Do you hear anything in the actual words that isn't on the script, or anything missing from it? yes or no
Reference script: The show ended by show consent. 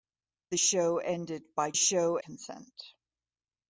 no